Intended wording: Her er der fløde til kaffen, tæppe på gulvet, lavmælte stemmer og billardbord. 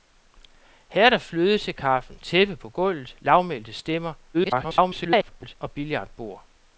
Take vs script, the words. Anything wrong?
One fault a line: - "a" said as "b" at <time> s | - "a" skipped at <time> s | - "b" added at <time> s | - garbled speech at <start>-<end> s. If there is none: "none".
- garbled speech at 4.3-5.6 s